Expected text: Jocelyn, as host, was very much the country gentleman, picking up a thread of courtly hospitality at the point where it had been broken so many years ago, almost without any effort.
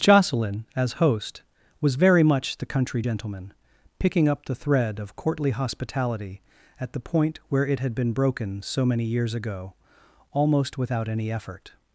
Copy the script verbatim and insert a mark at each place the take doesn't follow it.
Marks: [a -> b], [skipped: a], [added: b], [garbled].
Jocelyn, as host, was very much the country gentleman, picking up [a -> the] thread of courtly hospitality at the point where it had been broken so many years ago, almost without any effort.